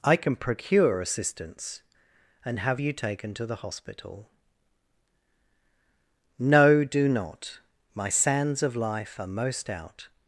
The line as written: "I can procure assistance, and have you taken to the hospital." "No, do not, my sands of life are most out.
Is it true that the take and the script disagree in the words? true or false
false